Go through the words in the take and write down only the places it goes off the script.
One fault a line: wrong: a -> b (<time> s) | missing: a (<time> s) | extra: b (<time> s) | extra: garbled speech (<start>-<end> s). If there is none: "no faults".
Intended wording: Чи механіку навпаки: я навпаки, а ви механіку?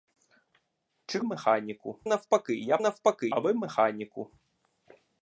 no faults